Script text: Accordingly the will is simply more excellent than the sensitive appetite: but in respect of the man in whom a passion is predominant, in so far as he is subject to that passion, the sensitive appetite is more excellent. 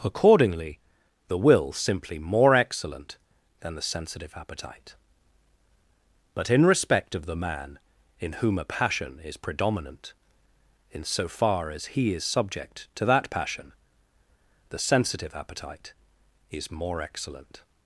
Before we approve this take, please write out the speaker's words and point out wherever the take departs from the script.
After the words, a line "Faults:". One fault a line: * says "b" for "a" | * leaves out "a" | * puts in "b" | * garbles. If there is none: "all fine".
Accordingly the will simply more excellent than the sensitive appetite: but in respect of the man in whom a passion is predominant, in so far as he is subject to that passion, the sensitive appetite is more excellent.
Faults:
* leaves out "is"